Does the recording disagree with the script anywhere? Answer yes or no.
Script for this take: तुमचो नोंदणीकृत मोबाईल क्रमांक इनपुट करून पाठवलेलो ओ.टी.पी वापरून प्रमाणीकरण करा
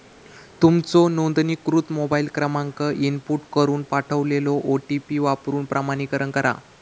no